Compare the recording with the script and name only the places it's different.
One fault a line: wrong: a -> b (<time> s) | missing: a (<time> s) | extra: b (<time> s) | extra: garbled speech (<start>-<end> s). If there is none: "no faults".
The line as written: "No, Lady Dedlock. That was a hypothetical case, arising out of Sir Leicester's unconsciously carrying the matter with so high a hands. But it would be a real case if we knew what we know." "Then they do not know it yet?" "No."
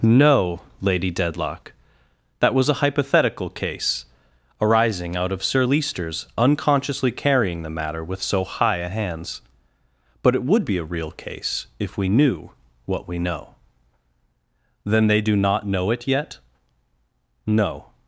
no faults